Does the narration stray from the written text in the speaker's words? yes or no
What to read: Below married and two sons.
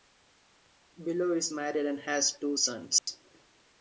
yes